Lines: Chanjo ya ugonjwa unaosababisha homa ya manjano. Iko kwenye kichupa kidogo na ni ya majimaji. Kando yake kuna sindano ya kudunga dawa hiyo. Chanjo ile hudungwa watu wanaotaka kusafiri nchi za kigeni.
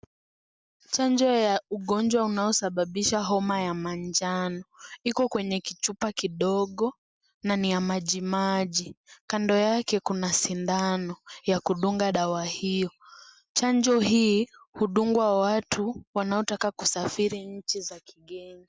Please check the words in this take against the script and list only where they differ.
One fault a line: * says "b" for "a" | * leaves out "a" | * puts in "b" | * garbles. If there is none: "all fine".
* says "hii" for "ile"